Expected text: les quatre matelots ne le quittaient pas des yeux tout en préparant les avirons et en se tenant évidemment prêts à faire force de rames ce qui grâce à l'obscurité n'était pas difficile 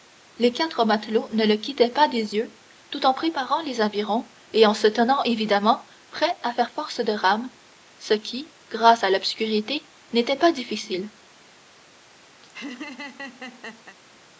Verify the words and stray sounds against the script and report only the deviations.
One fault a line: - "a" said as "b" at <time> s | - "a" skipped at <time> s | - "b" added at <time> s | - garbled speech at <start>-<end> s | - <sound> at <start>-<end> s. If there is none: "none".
- laugh at 12.4-14.0 s